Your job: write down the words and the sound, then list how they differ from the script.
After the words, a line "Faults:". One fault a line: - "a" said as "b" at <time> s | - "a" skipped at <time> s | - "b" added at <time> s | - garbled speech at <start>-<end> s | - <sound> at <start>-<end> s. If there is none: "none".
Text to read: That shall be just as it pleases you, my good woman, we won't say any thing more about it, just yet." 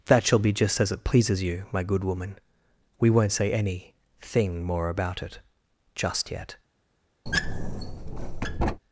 That shall be just as it pleases you, my good woman, we won't say any thing more about it, just yet."
Faults:
- squeak at 7.3-8.8 s